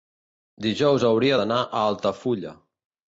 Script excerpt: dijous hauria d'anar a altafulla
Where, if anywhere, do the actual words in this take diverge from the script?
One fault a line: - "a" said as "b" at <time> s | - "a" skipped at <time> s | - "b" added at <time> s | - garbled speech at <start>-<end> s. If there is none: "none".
none